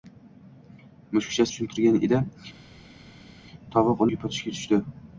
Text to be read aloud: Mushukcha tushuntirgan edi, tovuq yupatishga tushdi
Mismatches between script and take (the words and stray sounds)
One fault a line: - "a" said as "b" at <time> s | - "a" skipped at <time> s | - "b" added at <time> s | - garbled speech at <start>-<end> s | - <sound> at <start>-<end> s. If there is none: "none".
none